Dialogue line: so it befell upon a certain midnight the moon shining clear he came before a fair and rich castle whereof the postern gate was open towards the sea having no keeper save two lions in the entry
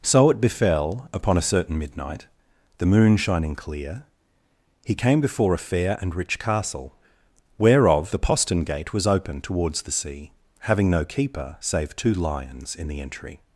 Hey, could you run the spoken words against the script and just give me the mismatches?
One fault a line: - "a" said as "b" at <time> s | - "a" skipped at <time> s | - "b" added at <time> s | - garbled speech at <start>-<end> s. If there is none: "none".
none